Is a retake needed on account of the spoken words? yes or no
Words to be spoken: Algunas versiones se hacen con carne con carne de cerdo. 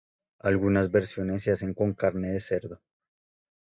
yes